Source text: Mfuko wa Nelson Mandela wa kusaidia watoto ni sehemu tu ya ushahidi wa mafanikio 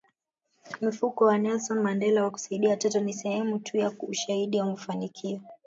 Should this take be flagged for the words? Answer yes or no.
no